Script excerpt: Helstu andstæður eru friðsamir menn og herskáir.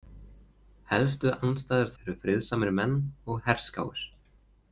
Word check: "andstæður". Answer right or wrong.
right